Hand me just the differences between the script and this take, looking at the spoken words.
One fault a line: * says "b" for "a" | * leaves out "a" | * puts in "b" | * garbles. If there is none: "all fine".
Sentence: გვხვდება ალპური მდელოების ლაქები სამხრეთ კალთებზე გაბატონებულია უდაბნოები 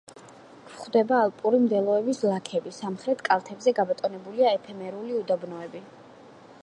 * puts in "ეფემერული"